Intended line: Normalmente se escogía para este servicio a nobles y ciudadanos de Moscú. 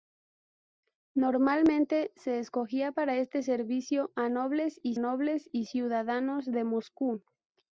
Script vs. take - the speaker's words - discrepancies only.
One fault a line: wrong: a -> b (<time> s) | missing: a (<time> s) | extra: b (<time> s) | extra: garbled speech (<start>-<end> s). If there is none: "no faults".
extra: nobles y (5.0 s)